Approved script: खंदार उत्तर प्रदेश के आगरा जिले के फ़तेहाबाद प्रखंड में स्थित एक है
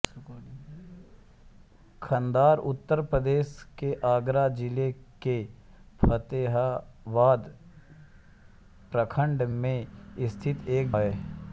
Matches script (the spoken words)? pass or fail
pass